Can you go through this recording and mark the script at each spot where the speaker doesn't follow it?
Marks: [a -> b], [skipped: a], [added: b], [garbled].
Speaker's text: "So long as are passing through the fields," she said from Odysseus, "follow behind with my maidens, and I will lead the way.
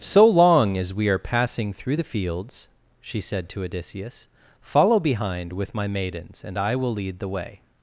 "So long as [added: we] are passing through the fields," she said [from -> to] Odysseus, "follow behind with my maidens, and I will lead the way.